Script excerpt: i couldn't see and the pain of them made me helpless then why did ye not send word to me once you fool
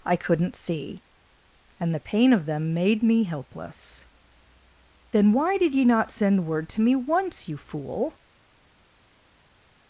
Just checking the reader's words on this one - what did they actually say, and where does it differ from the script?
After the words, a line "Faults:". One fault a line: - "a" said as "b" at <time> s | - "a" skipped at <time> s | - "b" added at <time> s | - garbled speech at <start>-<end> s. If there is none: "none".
i couldn't see and the pain of them made me helpless then why did ye not send word to me once you fool
Faults:
none